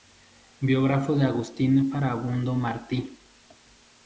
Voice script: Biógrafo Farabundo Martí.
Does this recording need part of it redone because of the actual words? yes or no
yes